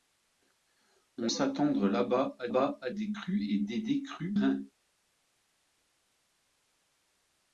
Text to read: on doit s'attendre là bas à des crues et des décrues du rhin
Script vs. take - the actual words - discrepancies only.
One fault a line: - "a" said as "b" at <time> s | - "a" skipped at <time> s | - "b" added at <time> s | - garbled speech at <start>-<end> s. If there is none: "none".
- "doit" skipped at 1.3 s
- "bas à" added at 2.5 s
- "du" skipped at 4.4 s